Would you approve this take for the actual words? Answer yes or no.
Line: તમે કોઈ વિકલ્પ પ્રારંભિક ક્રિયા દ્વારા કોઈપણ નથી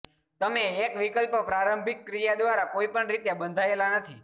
no